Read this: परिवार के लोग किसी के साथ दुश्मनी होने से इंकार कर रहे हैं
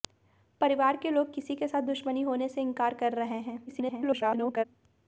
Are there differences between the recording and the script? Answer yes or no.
yes